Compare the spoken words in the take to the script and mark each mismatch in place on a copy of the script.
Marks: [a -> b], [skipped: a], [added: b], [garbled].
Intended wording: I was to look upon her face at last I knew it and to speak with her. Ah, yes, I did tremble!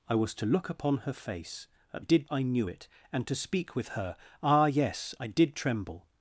I was to look upon her face at [last -> did] I knew it and to speak with her. Ah, yes, I did tremble!